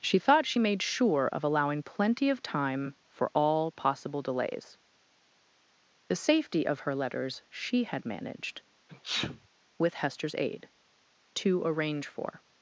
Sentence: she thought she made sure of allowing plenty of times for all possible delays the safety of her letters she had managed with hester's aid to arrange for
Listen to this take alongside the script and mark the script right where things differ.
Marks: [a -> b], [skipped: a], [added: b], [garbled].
she thought she made sure of allowing plenty of [times -> time] for all possible delays the safety of her letters she had managed with hester's aid to arrange for